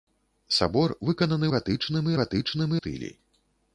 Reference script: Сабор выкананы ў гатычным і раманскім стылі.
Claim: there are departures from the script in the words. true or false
true